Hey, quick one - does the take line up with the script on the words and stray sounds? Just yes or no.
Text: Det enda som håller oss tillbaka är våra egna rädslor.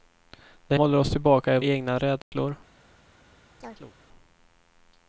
no